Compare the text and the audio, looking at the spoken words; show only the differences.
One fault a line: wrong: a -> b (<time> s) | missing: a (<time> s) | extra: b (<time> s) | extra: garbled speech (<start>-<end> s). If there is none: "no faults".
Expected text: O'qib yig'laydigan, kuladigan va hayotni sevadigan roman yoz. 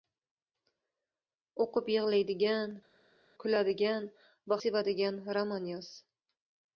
missing: hayotni (4.6 s)